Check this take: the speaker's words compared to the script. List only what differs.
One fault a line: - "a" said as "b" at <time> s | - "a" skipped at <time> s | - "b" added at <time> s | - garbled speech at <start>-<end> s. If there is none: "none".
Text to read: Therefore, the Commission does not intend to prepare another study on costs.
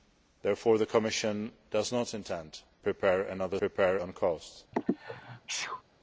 - "to" skipped at 2.6 s
- "study" said as "prepare" at 3.5 s